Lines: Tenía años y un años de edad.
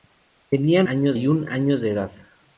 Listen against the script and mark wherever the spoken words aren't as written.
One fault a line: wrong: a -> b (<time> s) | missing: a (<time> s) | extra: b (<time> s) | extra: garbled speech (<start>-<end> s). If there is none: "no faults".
no faults